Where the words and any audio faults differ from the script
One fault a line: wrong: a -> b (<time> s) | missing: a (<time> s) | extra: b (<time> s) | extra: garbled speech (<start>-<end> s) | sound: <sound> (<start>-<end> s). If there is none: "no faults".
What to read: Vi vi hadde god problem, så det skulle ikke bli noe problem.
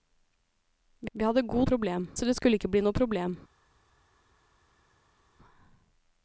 no faults